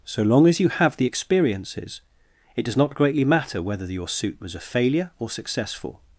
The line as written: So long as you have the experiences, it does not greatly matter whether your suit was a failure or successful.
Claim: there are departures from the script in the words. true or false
false